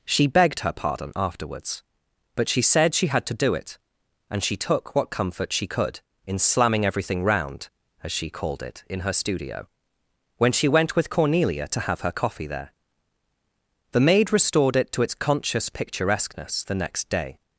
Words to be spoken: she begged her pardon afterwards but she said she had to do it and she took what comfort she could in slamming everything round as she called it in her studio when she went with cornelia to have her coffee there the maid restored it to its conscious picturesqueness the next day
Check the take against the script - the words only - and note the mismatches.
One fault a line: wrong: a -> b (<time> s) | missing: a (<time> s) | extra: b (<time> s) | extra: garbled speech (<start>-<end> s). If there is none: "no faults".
no faults